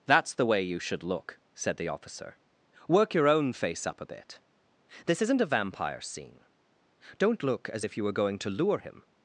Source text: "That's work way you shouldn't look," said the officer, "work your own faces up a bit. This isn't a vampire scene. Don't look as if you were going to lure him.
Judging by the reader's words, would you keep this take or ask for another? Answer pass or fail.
fail